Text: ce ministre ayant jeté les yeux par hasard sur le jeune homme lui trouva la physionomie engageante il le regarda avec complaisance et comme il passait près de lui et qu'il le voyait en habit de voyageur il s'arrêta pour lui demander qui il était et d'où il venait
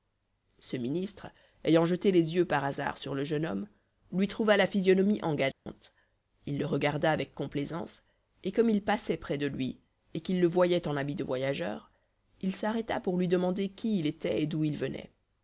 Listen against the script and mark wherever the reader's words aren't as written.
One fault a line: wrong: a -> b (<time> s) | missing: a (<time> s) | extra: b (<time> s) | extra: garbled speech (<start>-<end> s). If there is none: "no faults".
no faults